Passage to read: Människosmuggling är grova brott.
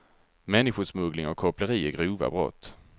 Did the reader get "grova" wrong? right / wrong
right